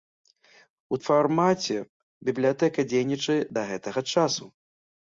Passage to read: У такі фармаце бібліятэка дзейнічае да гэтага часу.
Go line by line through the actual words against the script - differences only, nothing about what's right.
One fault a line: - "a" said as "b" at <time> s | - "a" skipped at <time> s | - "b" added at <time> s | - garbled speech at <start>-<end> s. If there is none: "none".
- "такі" skipped at 1.0 s